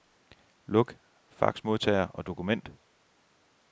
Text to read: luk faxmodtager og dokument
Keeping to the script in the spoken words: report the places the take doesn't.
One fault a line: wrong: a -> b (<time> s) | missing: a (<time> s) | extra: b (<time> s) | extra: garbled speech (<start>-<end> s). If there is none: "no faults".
no faults